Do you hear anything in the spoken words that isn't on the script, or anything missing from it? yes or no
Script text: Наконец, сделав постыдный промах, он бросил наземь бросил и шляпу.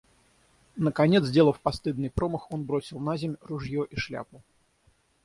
yes